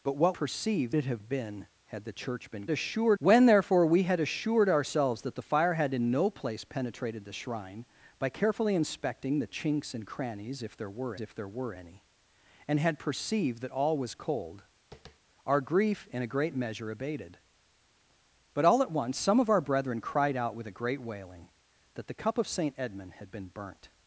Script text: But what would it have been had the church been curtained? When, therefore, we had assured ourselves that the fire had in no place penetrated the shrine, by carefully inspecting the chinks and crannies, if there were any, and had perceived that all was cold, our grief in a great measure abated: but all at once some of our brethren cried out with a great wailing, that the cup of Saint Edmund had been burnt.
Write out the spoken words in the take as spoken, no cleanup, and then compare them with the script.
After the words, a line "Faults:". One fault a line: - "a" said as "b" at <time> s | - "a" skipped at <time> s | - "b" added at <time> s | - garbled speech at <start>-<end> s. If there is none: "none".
But what perceived it have been had the church been assured? When, therefore, we had assured ourselves that the fire had in no place penetrated the shrine, by carefully inspecting the chinks and crannies, if there were if there were any, and had perceived that all was cold, our grief in a great measure abated: but all at once some of our brethren cried out with a great wailing, that the cup of Saint Edmund had been burnt.
Faults:
- "would" said as "perceived" at 0.3 s
- "curtained" said as "assured" at 2.7 s
- "if there were" added at 11.2 s